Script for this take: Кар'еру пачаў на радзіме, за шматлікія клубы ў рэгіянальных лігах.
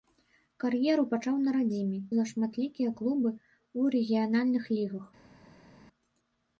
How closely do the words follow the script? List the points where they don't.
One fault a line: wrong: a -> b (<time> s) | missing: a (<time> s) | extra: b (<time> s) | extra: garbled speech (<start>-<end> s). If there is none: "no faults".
no faults